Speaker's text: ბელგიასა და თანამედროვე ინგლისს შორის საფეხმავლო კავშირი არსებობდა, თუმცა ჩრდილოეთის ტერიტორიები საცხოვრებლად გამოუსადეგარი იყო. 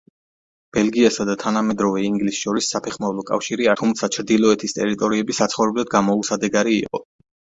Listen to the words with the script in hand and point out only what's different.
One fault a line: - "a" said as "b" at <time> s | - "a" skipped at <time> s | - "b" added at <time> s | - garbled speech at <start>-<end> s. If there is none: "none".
- "არსებობდა" skipped at 3.7 s